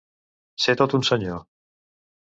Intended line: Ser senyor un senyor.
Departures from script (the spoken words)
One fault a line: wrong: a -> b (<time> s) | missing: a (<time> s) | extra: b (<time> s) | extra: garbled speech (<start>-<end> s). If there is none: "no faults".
wrong: senyor -> tot (0.8 s)